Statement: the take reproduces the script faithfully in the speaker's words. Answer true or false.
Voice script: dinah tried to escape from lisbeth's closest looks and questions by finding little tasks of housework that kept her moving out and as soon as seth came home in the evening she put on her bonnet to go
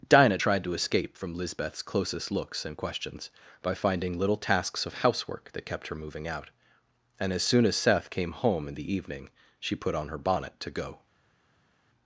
true